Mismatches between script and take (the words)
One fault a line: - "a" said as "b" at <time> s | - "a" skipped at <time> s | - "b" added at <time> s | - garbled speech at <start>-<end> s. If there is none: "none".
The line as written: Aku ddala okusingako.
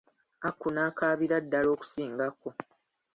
- "n'akaabira" added at 0.7 s